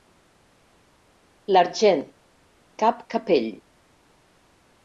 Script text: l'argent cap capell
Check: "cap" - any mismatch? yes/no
no